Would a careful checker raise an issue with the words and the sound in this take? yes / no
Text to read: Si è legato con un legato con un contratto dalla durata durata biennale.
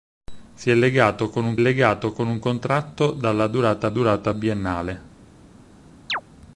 yes